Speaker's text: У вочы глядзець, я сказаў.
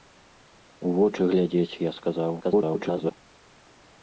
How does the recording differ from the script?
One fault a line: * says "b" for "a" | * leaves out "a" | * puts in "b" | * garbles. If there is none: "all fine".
* garbles